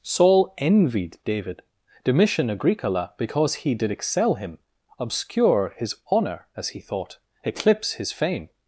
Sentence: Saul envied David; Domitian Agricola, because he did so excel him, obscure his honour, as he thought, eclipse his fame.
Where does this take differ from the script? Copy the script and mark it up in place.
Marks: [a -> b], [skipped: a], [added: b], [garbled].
Saul envied David; Domitian Agricola, because he did [skipped: so] excel him, obscure his honour, as he thought, eclipse his fame.